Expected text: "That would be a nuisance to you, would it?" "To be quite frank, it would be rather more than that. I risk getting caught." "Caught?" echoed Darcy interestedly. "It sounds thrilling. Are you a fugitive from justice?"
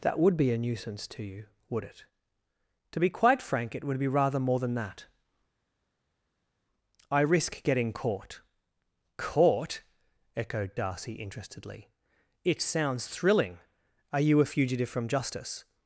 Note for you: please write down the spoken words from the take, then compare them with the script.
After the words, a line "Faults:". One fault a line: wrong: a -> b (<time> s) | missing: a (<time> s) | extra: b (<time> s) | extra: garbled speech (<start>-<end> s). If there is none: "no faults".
"That would be a nuisance to you, would it?" "To be quite frank, it would be rather more than that. I risk getting caught." "Caught?" echoed Darcy interestedly. "It sounds thrilling. Are you a fugitive from justice?"
Faults:
no faults